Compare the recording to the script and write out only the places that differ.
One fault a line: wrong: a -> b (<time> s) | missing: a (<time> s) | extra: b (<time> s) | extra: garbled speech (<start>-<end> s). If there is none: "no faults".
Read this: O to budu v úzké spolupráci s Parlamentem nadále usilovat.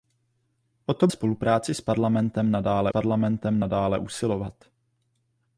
wrong: budu v úzké spolupráci s -> spolupráci s Parlamentem nadále (1.1 s)